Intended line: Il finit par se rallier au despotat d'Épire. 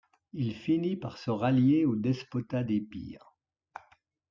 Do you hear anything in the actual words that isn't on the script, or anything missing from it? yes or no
no